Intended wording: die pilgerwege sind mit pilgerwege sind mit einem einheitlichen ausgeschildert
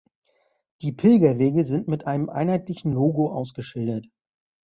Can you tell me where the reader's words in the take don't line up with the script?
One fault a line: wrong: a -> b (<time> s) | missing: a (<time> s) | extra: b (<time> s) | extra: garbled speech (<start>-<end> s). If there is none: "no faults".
missing: pilgerwege sind mit (2.1 s)
extra: logo (2.9 s)